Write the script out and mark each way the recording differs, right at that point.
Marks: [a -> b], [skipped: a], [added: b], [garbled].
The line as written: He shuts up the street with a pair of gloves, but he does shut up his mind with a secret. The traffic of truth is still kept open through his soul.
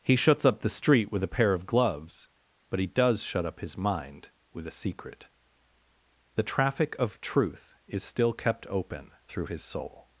He shuts up the street with a pair of gloves, but he does shut up his mind with a secret. The traffic of truth is still kept open through his soul.